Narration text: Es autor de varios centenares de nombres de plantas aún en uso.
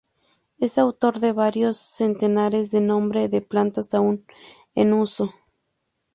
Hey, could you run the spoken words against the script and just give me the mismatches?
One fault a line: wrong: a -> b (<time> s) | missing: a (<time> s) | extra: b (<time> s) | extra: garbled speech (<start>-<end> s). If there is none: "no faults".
no faults